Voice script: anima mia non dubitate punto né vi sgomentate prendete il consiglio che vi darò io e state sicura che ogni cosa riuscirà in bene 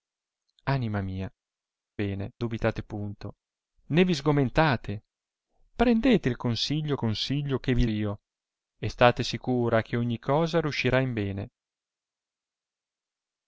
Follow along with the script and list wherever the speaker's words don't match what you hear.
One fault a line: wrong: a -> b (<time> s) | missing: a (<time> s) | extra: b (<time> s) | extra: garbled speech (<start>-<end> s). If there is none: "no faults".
wrong: non -> bene (2.0 s)
extra: consiglio (6.9 s)
missing: darò (7.8 s)